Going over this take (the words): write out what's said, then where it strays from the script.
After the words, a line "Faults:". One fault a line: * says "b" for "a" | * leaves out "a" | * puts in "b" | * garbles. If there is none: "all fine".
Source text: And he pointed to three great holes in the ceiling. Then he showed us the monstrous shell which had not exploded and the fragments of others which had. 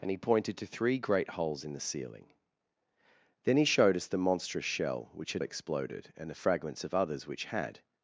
And he pointed to three great holes in the ceiling. Then he showed us the monstrous shell which had exploded and the fragments of others which had.
Faults:
* leaves out "not"